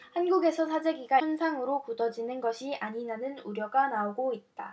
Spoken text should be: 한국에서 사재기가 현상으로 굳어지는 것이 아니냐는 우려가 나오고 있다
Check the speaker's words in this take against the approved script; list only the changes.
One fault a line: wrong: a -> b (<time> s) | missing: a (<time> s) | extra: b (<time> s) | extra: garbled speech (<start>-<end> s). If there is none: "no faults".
no faults